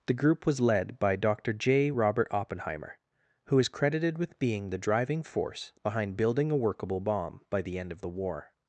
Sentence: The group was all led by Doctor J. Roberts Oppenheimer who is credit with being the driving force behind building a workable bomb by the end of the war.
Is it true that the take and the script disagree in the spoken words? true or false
true